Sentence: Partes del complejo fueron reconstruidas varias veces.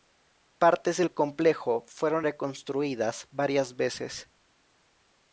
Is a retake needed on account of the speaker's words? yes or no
no